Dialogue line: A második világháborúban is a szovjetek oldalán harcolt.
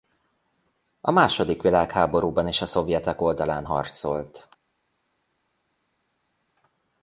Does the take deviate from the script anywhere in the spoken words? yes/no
no